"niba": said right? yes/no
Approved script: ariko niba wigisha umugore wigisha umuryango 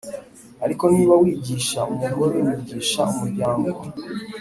yes